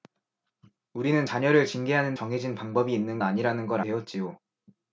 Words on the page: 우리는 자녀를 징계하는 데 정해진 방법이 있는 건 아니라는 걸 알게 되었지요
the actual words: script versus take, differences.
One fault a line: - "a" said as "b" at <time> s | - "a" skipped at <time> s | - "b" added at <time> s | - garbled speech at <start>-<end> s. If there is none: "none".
- "데" skipped at 2.2 s
- "건" skipped at 3.2 s
- "알게" skipped at 3.8 s